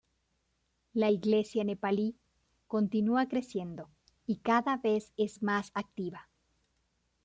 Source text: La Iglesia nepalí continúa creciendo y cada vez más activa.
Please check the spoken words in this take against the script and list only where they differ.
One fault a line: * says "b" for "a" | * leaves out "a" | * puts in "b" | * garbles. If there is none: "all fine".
* puts in "es"